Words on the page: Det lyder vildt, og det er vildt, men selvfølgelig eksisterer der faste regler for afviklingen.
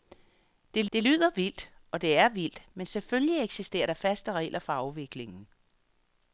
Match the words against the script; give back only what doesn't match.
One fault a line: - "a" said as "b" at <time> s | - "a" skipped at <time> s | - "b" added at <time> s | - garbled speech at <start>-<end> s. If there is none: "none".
- "det" added at 0.9 s